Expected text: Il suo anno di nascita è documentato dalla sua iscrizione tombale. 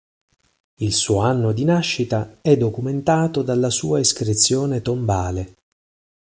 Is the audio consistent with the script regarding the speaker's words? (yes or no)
yes